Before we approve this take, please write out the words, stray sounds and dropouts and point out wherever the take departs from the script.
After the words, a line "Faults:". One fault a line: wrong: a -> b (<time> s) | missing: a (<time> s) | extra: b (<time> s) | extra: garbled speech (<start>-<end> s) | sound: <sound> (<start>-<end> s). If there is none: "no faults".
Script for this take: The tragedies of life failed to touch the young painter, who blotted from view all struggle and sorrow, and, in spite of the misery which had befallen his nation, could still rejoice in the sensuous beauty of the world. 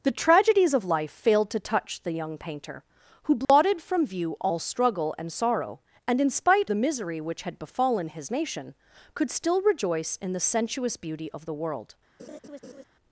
The tragedies of life failed to touch the young painter, who blotted from view all struggle and sorrow, and, in spite the misery which had befallen his nation, could still rejoice in the sensuous beauty of the world.
Faults:
sound: dropout (3.4-3.5 s)
missing: of (6.7 s)
sound: laugh (12.2-12.8 s)